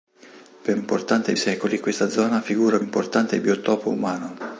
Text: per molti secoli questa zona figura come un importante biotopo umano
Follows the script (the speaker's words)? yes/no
no